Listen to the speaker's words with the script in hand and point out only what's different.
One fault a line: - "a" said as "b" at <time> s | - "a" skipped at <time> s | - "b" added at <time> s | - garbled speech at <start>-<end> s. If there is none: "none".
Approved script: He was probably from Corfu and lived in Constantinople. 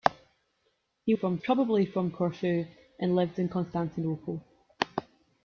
- "was" said as "from" at 1.1 s